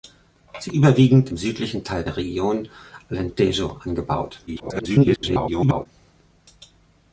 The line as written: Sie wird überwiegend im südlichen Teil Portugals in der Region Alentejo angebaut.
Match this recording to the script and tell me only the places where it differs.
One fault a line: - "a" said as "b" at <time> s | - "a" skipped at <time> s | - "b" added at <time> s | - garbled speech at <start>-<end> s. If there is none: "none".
- "wird" skipped at 0.7 s
- "Portugals in" skipped at 2.0 s
- garbled speech at 4.5-5.9 s